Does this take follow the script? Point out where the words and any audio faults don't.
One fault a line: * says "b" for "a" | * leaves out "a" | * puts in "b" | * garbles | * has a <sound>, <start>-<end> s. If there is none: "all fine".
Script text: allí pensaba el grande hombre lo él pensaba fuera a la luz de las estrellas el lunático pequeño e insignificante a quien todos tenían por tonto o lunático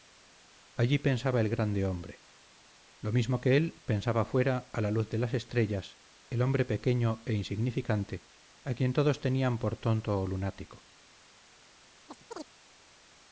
* puts in "mismo que"
* says "hombre" for "lunático"
* has a chirp, 12.1-12.5 s